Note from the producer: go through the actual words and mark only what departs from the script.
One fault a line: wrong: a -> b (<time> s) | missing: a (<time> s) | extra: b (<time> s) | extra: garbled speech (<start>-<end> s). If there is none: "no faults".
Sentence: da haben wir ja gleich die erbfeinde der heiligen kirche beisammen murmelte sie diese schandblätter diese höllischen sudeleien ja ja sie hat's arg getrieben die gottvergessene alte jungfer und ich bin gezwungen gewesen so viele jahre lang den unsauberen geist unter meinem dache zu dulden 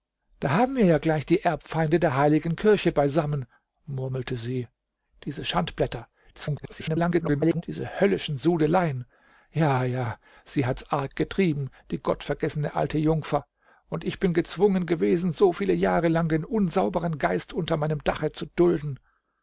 extra: garbled speech (6.3-7.6 s)